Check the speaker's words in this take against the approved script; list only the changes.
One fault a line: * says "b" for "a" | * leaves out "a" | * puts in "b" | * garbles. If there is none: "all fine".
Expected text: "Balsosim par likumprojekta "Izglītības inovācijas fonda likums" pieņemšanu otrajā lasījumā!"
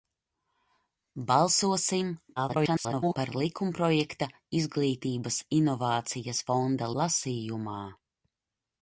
* garbles
* leaves out "likums pieņemšanu otrajā"